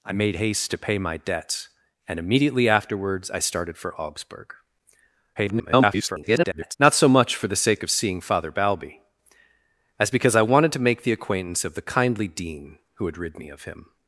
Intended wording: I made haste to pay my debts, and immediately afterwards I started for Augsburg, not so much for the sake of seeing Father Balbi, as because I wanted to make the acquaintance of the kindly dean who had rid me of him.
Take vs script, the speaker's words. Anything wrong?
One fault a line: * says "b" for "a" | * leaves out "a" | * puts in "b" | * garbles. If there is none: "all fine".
* garbles